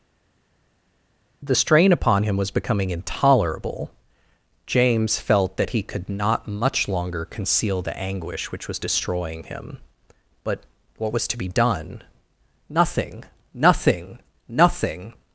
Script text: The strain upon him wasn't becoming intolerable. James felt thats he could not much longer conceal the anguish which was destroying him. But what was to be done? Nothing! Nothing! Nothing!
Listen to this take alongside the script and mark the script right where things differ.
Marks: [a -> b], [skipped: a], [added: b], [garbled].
The strain upon him [wasn't -> was] becoming intolerable. James felt [thats -> that] he could not much longer conceal the anguish which was destroying him. But what was to be done? Nothing! Nothing! Nothing!